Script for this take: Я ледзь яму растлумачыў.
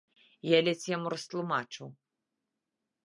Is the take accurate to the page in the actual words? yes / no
yes